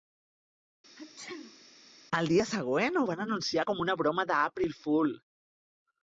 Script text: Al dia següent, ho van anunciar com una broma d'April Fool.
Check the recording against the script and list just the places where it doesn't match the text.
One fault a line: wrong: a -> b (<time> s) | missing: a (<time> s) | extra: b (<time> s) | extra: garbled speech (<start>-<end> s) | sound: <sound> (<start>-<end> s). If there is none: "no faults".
sound: sneeze (1.0-1.7 s)